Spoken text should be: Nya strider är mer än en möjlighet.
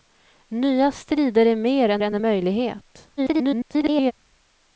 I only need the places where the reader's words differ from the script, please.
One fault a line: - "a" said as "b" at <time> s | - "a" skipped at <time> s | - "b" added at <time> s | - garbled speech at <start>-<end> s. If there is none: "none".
- "än" added at 2.0 s
- garbled speech at 3.2-4.1 s